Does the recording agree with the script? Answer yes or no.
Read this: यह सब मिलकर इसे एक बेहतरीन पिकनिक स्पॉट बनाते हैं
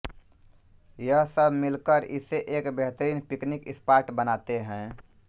yes